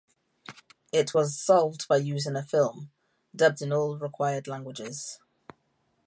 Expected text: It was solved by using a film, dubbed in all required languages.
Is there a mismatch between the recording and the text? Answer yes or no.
no